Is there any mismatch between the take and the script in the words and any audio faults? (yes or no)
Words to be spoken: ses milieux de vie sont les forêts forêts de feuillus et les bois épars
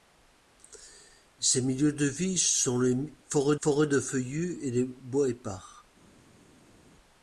no